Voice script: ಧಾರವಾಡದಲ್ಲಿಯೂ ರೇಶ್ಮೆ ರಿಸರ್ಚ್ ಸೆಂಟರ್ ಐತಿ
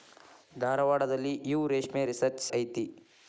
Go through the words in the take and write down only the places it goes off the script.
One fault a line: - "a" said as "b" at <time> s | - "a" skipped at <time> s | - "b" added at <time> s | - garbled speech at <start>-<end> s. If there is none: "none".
- "ಸೆಂಟರ್" skipped at 2.5 s